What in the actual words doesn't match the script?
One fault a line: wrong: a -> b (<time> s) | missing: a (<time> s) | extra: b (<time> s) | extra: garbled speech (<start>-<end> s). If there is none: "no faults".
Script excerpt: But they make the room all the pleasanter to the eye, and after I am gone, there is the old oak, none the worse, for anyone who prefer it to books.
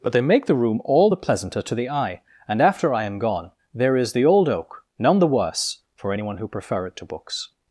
no faults